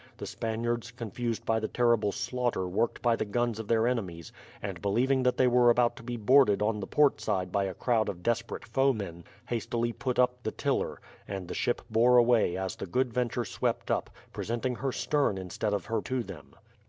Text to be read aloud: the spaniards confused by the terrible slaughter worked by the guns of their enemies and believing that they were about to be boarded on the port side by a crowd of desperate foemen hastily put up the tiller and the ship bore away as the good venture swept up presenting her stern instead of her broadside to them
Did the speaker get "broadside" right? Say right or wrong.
wrong